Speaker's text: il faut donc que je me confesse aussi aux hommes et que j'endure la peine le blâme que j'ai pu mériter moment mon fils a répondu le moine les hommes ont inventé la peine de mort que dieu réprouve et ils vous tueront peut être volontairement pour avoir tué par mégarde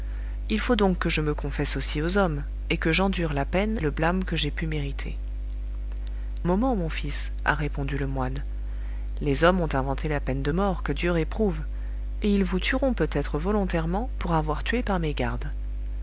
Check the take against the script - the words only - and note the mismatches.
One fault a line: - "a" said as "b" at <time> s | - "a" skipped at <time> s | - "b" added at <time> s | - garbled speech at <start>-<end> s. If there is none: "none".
none